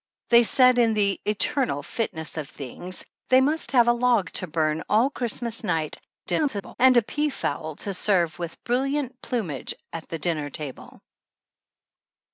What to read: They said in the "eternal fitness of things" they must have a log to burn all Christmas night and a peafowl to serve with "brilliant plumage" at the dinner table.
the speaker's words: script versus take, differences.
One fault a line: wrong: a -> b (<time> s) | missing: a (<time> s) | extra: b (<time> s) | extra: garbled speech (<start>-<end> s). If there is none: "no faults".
extra: garbled speech (6.3-6.8 s)